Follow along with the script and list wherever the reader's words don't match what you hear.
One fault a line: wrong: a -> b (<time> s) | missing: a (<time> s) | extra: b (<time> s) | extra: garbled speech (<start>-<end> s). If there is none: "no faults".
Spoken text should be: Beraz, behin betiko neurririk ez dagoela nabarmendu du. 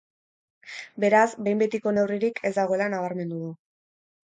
no faults